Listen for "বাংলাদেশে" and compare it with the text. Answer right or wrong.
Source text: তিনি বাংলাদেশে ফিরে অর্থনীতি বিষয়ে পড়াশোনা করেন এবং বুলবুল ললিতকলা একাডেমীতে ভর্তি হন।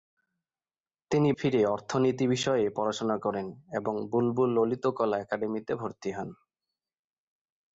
wrong